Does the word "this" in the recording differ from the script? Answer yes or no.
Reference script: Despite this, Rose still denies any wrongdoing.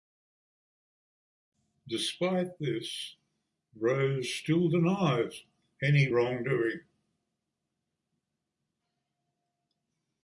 no